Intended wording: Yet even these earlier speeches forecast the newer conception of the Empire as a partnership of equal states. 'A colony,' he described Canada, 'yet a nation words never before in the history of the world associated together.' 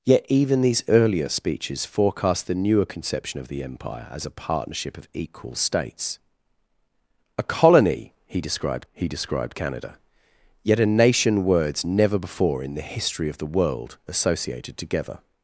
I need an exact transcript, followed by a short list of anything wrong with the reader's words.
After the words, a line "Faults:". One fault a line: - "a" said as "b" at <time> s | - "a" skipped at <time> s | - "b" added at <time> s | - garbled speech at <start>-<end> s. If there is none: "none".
Yet even these earlier speeches forecast the newer conception of the Empire as a partnership of equal states. 'A colony,' he described he described Canada, 'yet a nation words never before in the history of the world associated together.'
Faults:
- "he described" added at 8.9 s